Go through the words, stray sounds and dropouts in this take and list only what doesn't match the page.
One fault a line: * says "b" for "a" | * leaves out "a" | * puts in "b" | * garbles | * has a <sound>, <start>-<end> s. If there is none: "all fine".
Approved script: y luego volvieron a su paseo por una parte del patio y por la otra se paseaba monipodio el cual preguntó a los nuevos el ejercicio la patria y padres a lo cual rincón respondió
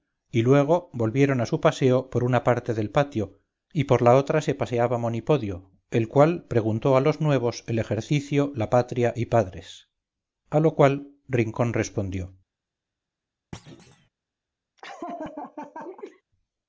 * has a thud, 13.5-14.1 s
* has a laugh, 14.8-16.2 s